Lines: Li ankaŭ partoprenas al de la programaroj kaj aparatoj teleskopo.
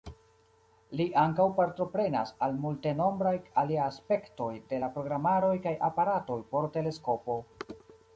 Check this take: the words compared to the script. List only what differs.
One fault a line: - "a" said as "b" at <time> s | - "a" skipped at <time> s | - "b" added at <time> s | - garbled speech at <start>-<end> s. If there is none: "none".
- "multenombraj aliaj aspektoj" added at 2.6 s
- "por" added at 6.5 s